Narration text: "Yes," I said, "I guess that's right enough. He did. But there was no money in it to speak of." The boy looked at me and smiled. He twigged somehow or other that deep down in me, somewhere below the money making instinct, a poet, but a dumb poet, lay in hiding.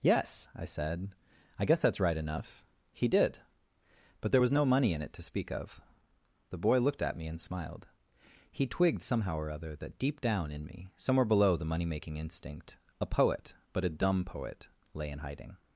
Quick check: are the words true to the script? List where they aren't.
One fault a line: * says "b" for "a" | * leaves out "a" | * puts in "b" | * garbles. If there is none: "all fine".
all fine